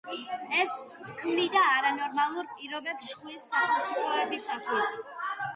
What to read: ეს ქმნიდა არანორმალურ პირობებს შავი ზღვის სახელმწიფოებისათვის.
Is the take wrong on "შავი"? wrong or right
wrong